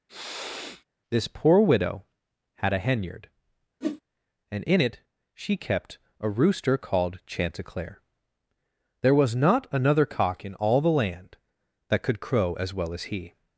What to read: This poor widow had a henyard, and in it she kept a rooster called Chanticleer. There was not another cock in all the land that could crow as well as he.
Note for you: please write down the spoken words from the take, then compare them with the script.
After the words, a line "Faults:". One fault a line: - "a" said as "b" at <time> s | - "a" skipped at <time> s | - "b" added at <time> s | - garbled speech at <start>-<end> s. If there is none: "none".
This poor widow had a henyard, and in it she kept a rooster called Chanticleer. There was not another cock in all the land that could crow as well as he.
Faults:
none